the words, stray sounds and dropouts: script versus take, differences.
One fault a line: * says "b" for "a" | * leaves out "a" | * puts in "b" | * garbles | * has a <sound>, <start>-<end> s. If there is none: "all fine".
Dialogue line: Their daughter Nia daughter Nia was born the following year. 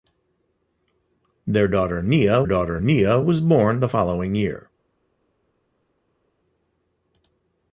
all fine